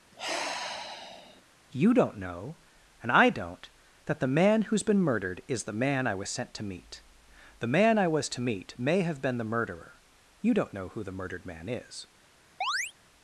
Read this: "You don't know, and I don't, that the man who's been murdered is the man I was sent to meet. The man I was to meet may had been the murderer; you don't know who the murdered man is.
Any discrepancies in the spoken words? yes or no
yes